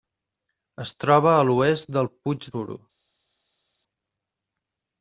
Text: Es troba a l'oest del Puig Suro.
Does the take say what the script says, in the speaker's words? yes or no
yes